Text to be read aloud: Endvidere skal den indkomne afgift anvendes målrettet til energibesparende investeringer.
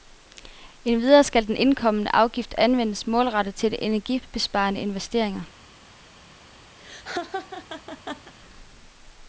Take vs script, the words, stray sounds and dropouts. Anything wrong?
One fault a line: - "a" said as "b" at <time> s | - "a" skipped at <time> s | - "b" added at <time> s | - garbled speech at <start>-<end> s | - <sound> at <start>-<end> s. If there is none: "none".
- laugh at 6.8-8.3 s